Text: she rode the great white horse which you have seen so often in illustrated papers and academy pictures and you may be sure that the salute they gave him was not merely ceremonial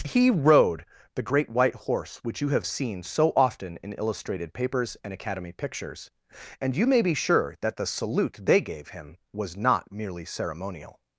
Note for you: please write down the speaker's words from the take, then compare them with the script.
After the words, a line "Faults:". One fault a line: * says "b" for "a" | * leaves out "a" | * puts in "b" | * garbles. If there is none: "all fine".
he rode the great white horse which you have seen so often in illustrated papers and academy pictures and you may be sure that the salute they gave him was not merely ceremonial
Faults:
* says "he" for "she"